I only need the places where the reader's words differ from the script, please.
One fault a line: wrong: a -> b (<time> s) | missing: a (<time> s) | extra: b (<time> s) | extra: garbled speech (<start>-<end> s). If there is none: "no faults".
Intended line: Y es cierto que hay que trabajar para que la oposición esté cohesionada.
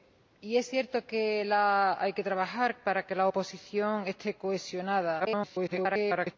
extra: garbled speech (5.2-6.4 s)